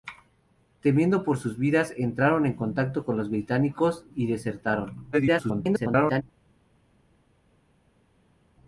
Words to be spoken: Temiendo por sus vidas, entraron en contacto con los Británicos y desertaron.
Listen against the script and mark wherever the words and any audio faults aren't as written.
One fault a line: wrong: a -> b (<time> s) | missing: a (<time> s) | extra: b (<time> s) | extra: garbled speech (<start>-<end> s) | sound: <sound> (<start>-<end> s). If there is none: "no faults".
extra: garbled speech (5.1-6.2 s)